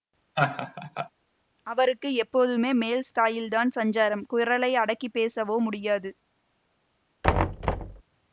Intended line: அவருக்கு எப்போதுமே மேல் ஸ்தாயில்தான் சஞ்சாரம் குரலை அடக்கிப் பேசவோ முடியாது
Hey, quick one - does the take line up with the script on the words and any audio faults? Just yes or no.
no